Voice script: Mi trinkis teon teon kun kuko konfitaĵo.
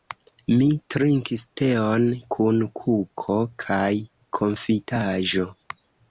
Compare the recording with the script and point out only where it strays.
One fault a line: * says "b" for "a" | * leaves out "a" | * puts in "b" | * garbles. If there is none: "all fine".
* leaves out "teon"
* puts in "kaj"